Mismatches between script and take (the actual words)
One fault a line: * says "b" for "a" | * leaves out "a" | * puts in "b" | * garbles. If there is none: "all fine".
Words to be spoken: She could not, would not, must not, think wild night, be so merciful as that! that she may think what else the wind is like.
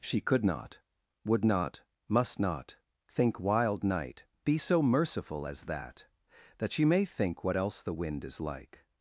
all fine